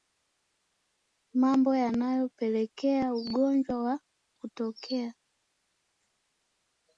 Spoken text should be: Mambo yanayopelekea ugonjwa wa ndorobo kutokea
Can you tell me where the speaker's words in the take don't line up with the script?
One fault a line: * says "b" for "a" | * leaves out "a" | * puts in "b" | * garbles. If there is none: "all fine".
* leaves out "ndorobo"